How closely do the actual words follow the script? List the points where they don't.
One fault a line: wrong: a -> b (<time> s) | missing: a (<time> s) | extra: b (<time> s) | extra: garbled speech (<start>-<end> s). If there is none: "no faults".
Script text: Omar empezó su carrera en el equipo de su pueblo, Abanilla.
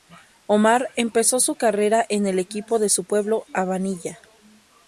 no faults